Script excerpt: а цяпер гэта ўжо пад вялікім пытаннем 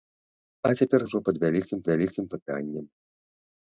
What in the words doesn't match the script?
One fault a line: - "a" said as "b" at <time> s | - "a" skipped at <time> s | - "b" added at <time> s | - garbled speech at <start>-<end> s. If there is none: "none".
- "гэта" skipped at 1.1 s
- "вялікім" added at 1.9 s